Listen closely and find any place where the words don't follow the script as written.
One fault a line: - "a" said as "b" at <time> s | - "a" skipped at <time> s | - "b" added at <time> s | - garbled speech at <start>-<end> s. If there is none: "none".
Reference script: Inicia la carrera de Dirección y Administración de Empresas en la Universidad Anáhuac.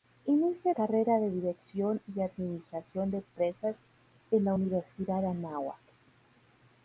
- "la" skipped at 0.7 s